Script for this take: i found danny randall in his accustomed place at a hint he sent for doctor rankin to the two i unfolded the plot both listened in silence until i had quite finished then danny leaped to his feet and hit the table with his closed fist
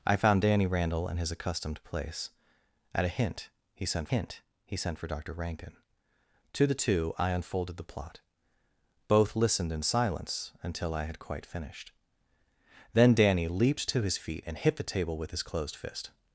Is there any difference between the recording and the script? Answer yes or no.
yes